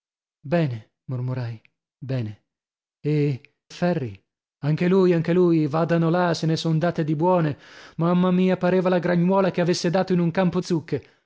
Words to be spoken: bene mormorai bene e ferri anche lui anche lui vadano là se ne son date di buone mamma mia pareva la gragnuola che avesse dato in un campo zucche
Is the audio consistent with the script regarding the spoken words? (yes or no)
yes